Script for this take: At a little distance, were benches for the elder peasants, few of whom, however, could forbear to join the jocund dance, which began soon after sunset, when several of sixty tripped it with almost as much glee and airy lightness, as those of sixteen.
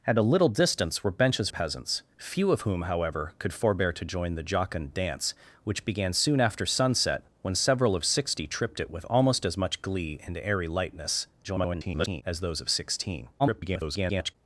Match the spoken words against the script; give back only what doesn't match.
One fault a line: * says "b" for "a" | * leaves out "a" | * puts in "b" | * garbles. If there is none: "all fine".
* leaves out "for the elder"
* garbles
* garbles